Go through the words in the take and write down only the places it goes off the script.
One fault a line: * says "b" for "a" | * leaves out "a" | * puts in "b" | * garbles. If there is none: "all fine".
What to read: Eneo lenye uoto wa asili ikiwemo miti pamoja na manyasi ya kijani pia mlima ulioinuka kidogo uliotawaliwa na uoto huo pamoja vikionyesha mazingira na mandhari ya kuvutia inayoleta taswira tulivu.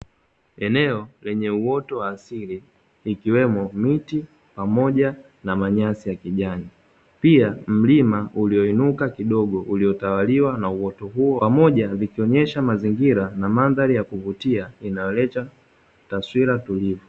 all fine